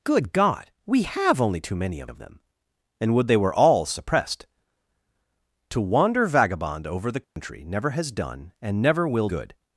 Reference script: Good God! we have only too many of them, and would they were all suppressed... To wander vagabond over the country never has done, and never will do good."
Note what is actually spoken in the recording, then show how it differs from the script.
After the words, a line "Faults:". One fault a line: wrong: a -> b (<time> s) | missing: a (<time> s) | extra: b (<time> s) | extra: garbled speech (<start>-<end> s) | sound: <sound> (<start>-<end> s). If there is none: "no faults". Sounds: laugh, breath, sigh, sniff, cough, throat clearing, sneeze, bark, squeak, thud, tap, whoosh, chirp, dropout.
Good God! we have only too many of of them, and would they were all suppressed... To wander vagabond over the country never has done, and never will good."
Faults:
extra: of (2.1 s)
sound: dropout (7.2-7.4 s)
missing: do (9.3 s)